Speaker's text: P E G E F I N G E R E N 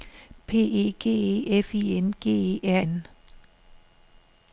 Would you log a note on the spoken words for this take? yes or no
yes